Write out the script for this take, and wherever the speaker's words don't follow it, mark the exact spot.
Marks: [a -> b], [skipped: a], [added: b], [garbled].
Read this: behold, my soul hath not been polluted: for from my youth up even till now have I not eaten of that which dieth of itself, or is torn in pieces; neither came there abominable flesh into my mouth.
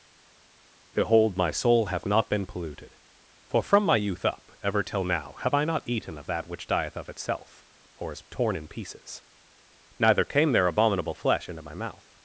behold, my soul hath not been polluted: for from my youth up [even -> ever] till now have I not eaten of that which dieth of itself, or is torn in pieces; neither came there abominable flesh into my mouth.